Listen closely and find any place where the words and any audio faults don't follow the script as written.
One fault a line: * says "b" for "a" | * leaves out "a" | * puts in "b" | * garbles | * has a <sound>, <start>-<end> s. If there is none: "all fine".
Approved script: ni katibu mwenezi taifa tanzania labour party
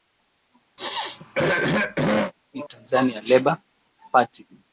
* has a throat clearing, 0.8-2.3 s
* leaves out "katibu mwenezi taifa"